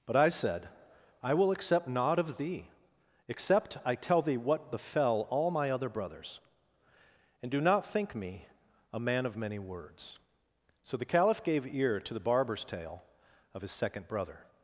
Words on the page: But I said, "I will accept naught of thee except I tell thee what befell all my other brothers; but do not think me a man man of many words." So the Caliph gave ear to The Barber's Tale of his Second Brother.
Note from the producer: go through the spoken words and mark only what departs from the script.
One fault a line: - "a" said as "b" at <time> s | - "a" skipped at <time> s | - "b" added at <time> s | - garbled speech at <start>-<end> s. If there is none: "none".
- "but" said as "and" at 7.4 s
- "man" skipped at 9.2 s